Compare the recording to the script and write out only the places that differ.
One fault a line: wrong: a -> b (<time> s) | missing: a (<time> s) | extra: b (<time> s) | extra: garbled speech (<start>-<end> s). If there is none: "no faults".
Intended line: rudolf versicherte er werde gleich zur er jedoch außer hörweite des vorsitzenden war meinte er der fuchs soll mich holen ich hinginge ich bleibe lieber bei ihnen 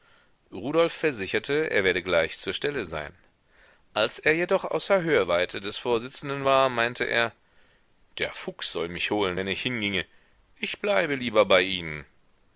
extra: stelle sein als (2.5 s)
extra: wenn (9.3 s)